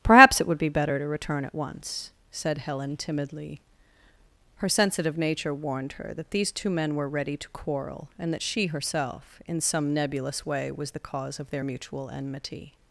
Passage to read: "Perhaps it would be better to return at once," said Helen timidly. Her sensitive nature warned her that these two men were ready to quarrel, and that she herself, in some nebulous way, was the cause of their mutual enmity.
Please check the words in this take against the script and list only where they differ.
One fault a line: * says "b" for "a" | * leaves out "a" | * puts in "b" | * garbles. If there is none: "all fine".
all fine